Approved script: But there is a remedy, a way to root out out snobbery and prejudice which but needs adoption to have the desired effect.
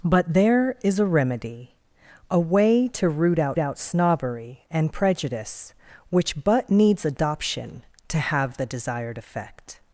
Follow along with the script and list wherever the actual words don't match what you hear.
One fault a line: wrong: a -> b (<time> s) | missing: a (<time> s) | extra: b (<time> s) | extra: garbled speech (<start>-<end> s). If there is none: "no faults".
no faults